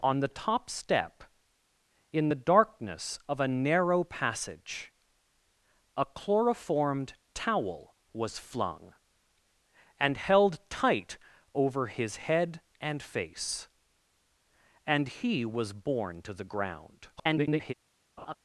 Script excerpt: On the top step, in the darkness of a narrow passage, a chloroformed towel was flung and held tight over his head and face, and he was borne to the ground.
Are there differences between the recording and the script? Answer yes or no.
yes